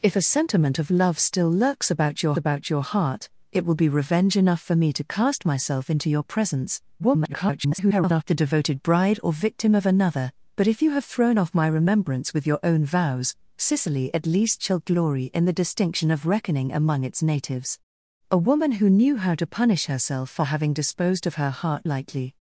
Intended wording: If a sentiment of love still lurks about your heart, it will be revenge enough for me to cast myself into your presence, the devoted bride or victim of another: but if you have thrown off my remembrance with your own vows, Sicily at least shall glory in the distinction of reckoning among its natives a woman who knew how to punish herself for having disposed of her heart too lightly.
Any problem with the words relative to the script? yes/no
yes